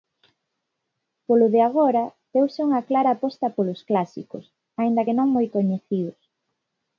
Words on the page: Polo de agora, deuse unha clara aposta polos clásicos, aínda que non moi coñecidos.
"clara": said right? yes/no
yes